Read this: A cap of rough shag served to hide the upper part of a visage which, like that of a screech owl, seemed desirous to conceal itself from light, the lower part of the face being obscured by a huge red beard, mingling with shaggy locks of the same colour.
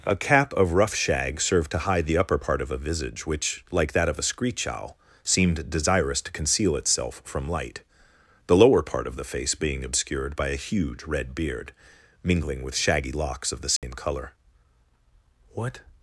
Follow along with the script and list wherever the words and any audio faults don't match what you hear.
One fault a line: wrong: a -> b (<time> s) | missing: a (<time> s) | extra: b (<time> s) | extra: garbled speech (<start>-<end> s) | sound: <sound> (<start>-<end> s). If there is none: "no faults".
sound: dropout (13.8-13.8 s)
extra: What (15.5 s)